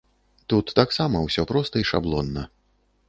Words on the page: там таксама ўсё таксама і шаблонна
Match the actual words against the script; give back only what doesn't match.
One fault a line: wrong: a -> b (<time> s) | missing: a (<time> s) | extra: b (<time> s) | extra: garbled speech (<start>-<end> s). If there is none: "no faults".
wrong: там -> тут (0.5 s)
wrong: таксама -> проста (1.5 s)